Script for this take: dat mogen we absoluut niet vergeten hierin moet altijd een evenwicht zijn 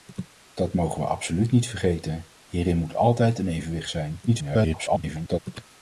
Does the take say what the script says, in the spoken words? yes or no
no